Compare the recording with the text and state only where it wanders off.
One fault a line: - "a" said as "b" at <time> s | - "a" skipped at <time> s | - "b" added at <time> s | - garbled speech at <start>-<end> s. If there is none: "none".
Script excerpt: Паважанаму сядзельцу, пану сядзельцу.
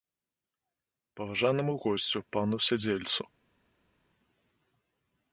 - "сядзельцу" said as "госцю" at 1.8 s